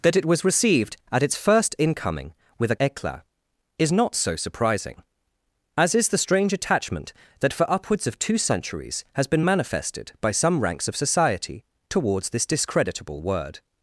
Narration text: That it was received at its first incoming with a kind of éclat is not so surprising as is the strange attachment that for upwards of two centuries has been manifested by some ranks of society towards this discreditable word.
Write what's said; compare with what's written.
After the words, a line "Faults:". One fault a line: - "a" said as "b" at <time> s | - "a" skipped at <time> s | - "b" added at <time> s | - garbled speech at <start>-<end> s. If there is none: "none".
That it was received at its first incoming with a éclat is not so surprising as is the strange attachment that for upwards of two centuries has been manifested by some ranks of society towards this discreditable word.
Faults:
- "kind of" skipped at 2.8 s